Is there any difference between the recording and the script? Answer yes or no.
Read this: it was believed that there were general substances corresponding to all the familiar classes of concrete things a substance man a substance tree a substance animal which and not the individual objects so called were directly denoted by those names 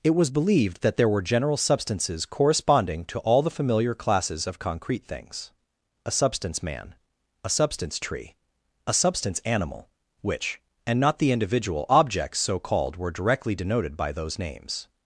no